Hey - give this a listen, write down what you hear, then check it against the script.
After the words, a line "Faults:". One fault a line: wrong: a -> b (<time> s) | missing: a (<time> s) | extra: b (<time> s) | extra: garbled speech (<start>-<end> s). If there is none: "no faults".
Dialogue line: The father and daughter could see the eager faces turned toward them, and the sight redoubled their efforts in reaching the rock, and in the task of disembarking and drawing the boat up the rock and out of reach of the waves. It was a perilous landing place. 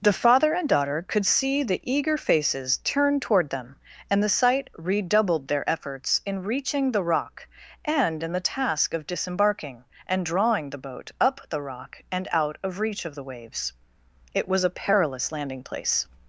The father and daughter could see the eager faces turned toward them, and the sight redoubled their efforts in reaching the rock, and in the task of disembarking and drawing the boat up the rock and out of reach of the waves. It was a perilous landing place.
Faults:
no faults